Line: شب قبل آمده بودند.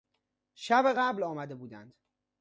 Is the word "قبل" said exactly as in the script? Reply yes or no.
yes